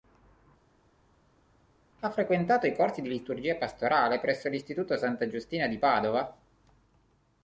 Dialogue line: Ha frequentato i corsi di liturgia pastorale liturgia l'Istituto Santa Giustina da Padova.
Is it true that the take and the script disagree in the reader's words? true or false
true